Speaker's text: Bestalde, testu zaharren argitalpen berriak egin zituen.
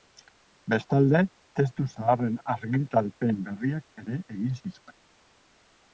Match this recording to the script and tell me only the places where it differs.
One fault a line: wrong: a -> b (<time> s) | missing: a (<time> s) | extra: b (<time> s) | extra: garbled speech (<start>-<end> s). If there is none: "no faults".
extra: ere (4.0 s)